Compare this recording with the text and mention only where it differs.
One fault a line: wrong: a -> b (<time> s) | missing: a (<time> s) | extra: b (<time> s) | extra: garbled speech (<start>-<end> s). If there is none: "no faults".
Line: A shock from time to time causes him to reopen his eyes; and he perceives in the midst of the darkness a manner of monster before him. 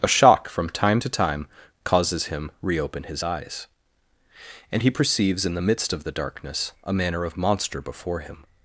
missing: to (2.5 s)